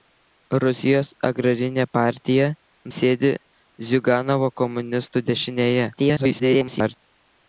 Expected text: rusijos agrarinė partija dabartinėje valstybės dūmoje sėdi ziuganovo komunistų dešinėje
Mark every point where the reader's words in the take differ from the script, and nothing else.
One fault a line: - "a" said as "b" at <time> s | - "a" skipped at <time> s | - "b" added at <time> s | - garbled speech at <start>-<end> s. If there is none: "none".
- "dabartinėje valstybės dūmoje" skipped at 2.5 s
- garbled speech at 6.0-7.0 s